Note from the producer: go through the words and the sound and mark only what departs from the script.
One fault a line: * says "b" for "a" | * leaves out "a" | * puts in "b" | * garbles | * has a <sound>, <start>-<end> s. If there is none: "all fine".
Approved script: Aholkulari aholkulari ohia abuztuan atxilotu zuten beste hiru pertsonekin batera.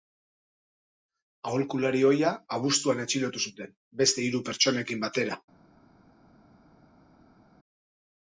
* leaves out "aholkulari"